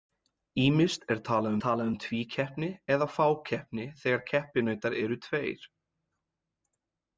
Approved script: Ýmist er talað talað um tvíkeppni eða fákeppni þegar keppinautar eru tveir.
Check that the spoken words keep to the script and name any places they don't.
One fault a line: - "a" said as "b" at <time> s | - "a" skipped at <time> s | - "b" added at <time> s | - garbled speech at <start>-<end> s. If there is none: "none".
none